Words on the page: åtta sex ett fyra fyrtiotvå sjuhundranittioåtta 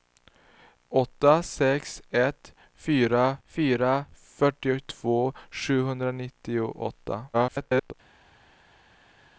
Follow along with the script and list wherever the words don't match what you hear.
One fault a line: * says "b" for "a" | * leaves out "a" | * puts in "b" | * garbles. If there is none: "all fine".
* puts in "fyra"
* garbles